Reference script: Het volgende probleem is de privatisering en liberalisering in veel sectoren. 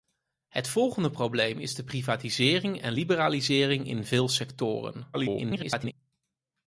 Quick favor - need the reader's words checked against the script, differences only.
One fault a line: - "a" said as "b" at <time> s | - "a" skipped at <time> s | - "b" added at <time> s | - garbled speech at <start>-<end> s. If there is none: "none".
- garbled speech at 5.1-5.9 s